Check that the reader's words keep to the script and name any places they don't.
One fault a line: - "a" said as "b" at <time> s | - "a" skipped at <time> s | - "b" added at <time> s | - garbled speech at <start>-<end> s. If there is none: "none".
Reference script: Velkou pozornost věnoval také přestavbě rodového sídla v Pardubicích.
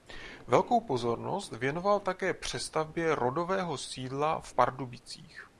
none